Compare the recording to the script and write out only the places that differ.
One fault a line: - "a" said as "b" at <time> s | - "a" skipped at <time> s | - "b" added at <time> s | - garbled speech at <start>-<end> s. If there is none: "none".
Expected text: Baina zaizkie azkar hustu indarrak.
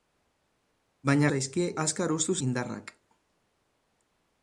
none